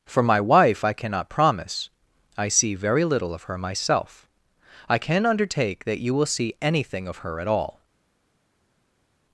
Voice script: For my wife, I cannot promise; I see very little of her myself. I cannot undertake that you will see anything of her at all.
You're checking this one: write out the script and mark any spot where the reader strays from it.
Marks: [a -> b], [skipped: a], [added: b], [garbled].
For my wife, I cannot promise; I see very little of her myself. I [cannot -> can] undertake that you will see anything of her at all.